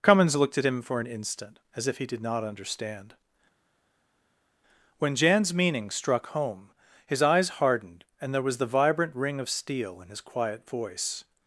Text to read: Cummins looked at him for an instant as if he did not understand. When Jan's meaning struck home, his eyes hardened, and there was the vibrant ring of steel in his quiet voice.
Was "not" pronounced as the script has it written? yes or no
yes